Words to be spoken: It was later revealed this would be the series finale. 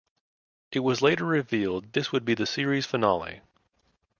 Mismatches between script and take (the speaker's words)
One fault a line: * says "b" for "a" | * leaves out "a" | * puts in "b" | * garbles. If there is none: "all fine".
all fine